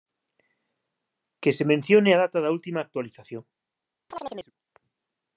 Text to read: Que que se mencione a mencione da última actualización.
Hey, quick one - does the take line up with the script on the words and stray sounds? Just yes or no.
no